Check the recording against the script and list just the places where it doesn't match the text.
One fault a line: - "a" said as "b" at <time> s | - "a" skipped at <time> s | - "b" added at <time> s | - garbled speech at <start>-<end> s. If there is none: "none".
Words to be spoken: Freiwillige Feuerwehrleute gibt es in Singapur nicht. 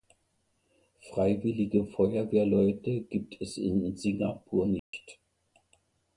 none